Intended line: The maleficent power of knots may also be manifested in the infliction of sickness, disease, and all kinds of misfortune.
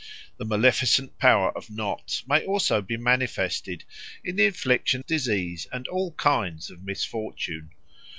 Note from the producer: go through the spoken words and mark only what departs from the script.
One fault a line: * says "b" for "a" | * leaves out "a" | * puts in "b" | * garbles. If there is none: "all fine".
* leaves out "of sickness"